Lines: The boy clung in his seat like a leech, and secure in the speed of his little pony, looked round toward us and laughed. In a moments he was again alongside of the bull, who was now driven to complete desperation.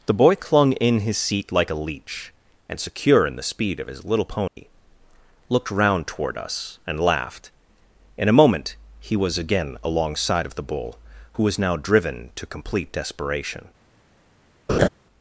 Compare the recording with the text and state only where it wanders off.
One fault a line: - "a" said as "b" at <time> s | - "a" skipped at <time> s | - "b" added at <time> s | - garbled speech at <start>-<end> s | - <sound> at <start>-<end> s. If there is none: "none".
- dropout at 4.5-4.6 s
- "moments" said as "moment" at 8.3 s
- laugh at 14.7-14.9 s